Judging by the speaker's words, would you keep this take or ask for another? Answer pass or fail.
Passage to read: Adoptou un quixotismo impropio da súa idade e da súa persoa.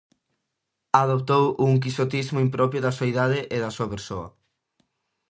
pass